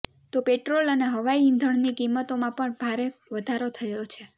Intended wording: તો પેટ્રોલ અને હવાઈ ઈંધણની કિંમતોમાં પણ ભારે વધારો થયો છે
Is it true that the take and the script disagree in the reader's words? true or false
false